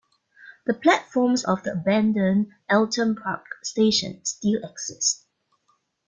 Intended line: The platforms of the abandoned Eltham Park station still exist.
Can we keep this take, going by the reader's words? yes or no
yes